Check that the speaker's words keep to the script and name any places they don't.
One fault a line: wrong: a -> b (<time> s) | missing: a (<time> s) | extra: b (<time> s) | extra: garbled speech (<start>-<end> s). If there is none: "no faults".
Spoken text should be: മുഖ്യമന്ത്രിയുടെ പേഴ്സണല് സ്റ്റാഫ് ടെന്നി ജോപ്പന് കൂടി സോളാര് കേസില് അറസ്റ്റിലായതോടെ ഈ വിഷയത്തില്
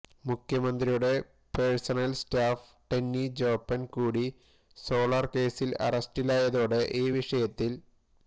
no faults